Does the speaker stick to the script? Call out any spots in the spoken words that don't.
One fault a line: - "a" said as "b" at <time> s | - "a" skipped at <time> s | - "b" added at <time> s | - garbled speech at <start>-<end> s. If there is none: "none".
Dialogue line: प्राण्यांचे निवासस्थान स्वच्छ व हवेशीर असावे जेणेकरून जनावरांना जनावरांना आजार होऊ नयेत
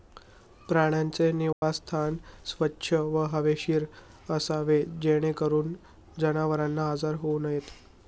- "जनावरांना" skipped at 6.9 s